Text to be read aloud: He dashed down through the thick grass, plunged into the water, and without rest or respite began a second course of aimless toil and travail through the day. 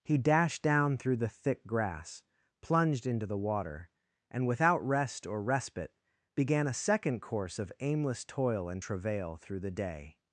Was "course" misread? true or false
false